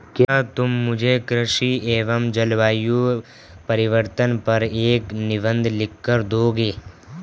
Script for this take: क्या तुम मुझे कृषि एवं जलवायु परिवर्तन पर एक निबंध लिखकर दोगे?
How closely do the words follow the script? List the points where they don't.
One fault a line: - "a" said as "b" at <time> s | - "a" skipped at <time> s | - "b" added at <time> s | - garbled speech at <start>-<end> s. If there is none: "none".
none